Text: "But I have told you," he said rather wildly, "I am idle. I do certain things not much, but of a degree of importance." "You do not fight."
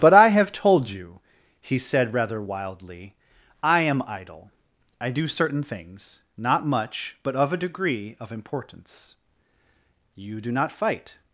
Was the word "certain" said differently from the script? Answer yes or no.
no